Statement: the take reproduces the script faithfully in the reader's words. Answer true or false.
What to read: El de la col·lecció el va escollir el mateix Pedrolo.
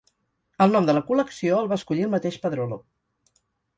false